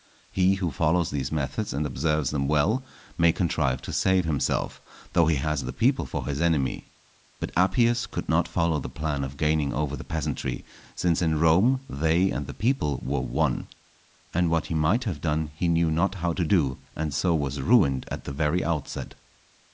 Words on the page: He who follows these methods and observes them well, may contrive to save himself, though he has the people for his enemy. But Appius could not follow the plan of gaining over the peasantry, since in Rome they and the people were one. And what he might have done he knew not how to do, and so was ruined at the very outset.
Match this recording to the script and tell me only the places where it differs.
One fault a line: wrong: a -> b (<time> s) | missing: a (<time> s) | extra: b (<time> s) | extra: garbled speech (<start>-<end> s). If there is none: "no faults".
no faults